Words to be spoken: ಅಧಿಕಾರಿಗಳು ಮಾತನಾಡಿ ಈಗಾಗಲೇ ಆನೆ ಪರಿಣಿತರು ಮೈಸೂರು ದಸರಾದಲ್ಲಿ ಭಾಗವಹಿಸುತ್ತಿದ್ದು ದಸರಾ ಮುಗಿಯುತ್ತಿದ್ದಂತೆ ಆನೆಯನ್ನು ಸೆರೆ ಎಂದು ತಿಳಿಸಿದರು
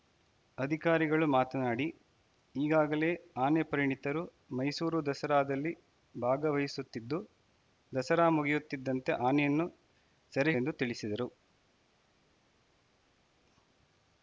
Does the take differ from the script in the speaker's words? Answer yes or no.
no